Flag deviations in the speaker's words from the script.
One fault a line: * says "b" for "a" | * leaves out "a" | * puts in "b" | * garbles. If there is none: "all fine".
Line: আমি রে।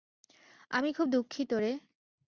* puts in "খুব দুঃখিত"